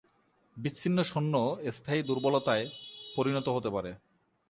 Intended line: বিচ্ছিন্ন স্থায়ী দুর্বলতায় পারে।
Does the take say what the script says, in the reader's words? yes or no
no